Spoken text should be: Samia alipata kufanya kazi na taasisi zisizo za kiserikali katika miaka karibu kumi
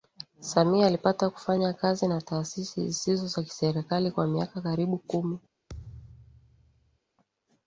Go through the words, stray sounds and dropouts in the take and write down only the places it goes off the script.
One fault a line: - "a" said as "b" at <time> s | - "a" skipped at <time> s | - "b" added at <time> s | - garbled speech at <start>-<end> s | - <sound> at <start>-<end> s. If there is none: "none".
- "katika" said as "kwa" at 4.1 s
- thud at 5.7-7.0 s